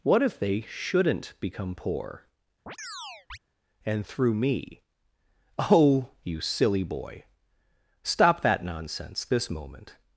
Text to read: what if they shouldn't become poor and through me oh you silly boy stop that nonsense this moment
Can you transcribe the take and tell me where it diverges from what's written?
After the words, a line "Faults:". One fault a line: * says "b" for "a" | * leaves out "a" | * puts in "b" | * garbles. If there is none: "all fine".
what if they shouldn't become poor and through me oh you silly boy stop that nonsense this moment
Faults:
all fine